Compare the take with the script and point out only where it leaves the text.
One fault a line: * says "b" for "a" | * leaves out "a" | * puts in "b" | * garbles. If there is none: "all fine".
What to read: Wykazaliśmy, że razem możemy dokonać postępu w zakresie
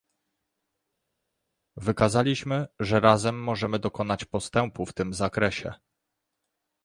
* puts in "tym"